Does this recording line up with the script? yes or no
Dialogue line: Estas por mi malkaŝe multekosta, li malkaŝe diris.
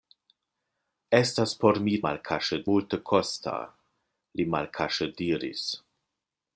yes